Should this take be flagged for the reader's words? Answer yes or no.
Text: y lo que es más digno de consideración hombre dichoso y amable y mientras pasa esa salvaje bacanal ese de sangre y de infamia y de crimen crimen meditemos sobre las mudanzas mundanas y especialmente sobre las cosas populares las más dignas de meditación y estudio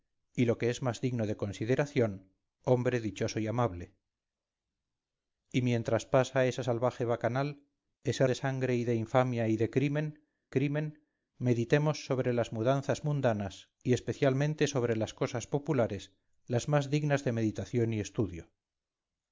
no